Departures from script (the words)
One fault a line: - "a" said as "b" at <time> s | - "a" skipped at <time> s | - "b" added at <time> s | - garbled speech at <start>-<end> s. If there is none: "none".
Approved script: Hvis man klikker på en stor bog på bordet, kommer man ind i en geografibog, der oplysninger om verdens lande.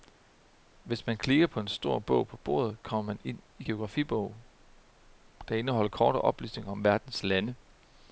- "indeholder korte" added at 5.5 s